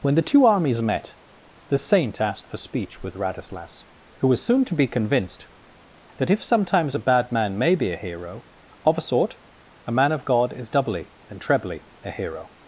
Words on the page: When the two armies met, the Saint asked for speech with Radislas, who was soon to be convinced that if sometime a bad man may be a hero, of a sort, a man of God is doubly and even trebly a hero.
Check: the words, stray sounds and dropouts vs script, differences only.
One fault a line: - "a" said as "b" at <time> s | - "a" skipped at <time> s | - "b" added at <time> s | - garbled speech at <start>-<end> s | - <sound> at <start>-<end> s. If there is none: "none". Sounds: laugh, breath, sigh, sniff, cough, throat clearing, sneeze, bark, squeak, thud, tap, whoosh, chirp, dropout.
- "sometime" said as "sometimes" at 6.4 s
- "even" skipped at 11.4 s